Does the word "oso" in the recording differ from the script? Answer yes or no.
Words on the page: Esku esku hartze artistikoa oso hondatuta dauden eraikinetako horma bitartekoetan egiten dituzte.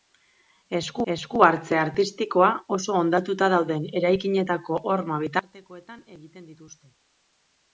no